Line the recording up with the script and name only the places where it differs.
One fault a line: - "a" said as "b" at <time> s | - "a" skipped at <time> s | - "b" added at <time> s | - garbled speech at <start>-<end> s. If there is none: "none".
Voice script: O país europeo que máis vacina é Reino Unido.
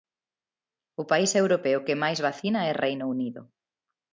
none